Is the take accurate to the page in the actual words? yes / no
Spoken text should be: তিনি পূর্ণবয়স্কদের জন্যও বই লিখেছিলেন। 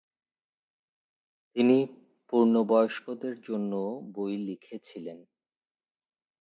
yes